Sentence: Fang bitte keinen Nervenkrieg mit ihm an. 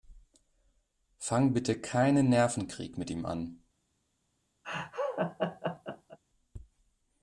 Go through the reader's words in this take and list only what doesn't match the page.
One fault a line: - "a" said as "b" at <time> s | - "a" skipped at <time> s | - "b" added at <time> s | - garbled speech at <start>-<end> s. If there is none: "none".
none